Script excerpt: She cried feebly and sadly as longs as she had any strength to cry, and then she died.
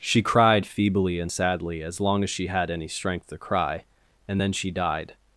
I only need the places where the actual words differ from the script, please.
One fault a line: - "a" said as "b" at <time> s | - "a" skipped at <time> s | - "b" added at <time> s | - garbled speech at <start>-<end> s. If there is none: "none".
- "longs" said as "long" at 2.0 s